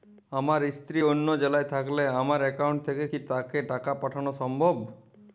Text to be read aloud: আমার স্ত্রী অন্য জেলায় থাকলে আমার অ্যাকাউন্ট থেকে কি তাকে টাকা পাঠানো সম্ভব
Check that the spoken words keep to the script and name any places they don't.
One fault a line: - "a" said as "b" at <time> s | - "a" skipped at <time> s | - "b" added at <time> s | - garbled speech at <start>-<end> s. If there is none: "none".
none